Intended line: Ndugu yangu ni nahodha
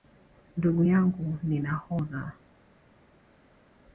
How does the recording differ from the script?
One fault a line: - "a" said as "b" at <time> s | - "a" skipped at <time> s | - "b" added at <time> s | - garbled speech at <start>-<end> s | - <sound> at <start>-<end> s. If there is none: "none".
none